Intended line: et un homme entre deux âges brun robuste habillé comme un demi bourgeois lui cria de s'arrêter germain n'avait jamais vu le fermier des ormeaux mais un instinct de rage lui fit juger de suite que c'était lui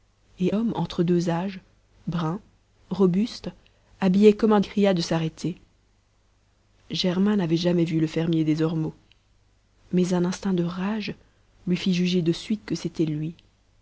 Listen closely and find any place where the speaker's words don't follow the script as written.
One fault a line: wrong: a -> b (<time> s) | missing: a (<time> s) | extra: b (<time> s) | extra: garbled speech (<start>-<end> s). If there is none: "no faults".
missing: un (0.5 s)
missing: demi bourgeois lui (4.6 s)